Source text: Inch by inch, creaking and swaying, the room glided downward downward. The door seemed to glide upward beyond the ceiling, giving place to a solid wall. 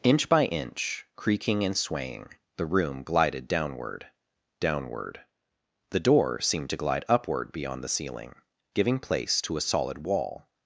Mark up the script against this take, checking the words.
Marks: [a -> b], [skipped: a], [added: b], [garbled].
Inch by inch, creaking and swaying, the room glided downward downward. The door seemed to glide upward beyond the ceiling, giving place to a solid wall.